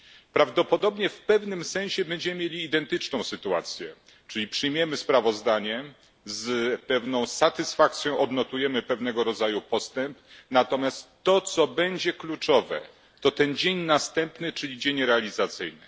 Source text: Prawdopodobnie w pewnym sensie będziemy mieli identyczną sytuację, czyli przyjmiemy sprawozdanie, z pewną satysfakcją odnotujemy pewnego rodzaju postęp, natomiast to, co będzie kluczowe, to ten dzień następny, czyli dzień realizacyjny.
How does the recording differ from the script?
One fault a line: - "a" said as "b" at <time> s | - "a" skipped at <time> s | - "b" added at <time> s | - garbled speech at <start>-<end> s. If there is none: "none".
none